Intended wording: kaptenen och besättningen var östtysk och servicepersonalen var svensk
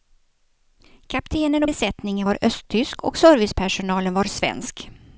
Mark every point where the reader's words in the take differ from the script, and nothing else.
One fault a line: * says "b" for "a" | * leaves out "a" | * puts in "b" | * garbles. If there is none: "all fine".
all fine